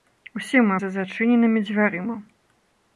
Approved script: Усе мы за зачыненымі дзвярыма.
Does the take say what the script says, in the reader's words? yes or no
yes